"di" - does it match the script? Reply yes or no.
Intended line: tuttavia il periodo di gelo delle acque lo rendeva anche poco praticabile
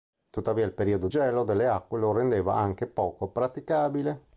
no